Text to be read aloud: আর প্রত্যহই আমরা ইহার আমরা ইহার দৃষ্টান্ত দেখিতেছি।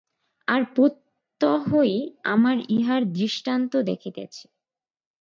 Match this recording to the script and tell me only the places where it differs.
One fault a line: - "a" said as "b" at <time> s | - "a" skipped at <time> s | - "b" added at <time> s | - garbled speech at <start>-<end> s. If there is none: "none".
- "আমরা ইহার" skipped at 3.0 s